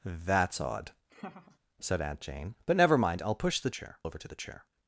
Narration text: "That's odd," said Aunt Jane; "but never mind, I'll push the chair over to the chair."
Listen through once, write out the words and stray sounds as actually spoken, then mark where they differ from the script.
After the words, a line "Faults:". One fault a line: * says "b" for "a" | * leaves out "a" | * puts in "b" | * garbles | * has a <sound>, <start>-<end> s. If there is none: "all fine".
"That's odd," said Aunt Jane; "but never mind, I'll push the chair over to the chair."
Faults:
* has a laugh, 1.1-1.6 s